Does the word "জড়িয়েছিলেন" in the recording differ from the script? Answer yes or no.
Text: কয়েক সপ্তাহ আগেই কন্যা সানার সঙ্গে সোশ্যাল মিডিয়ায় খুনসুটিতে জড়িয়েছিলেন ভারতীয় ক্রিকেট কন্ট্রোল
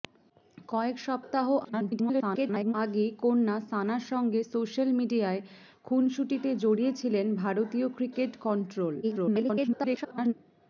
no